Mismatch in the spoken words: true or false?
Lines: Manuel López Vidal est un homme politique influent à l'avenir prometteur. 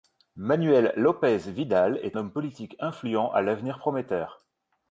true